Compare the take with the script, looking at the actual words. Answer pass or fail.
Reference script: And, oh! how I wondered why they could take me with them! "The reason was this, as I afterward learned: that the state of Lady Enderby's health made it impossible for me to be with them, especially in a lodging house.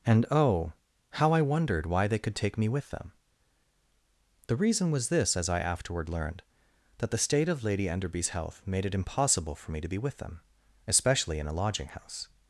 pass